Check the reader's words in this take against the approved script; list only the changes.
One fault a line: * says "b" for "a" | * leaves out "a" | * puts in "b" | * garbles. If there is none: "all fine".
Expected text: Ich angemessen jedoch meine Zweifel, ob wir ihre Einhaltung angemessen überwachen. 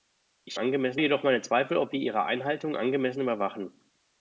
all fine